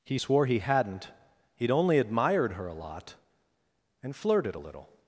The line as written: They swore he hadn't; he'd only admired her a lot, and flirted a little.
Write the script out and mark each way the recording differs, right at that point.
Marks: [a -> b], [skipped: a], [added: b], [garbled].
[They -> He] swore he hadn't; he'd only admired her a lot, and flirted a little.